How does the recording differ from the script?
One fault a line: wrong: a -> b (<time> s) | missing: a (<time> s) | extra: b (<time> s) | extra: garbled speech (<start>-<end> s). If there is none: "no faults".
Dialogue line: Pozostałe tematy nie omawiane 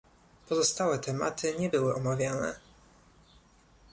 extra: były (1.7 s)